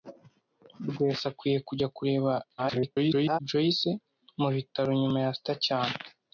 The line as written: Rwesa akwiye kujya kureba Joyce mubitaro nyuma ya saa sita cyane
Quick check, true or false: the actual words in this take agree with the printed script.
false